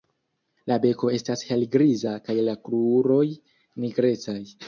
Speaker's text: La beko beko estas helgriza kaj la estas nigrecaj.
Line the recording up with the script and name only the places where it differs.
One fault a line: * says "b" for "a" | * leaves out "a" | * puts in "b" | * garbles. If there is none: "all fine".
* leaves out "beko"
* says "kruroj" for "estas"